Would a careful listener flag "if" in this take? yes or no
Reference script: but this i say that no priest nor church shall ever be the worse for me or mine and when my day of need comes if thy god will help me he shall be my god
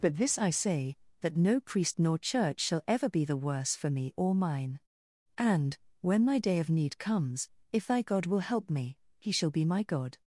no